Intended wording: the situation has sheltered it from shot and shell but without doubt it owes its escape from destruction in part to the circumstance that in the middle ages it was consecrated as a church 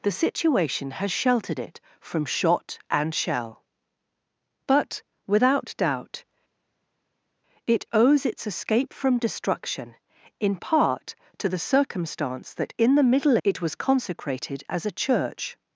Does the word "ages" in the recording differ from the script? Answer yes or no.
yes